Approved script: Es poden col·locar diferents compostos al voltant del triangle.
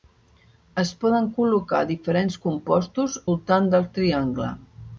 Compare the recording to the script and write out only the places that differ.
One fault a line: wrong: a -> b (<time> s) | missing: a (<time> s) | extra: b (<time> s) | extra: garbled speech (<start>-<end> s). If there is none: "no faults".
missing: al (3.2 s)